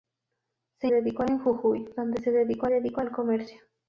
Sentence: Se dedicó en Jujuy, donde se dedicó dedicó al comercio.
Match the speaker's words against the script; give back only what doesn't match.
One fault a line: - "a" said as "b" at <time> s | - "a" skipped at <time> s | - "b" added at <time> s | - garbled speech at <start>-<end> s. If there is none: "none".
none